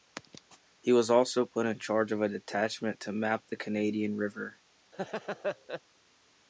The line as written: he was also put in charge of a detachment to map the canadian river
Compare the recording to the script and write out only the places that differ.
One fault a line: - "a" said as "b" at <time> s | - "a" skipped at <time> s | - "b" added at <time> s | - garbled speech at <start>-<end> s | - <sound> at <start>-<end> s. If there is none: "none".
- laugh at 4.9-5.8 s